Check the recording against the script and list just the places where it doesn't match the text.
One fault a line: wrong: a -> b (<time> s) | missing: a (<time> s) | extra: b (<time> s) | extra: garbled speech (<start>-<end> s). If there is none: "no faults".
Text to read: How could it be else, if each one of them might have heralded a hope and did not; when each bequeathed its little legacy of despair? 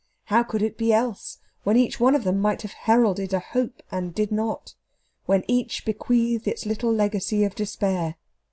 wrong: if -> when (1.6 s)